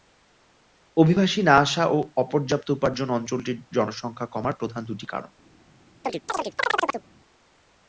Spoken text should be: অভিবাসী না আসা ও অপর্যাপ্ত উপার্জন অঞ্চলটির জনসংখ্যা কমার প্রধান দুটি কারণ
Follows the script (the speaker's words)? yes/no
yes